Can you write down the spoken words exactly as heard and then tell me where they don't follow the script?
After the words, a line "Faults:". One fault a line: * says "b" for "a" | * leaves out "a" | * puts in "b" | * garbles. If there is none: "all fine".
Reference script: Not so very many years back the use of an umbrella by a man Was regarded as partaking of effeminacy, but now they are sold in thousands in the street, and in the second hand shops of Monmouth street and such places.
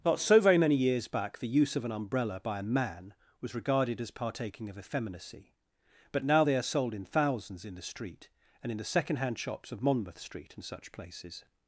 Not so very many years back the use of an umbrella by a man Was regarded as partaking of effeminacy, but now they are sold in thousands in the street, and in the second hand shops of Monmouth street and such places.
Faults:
all fine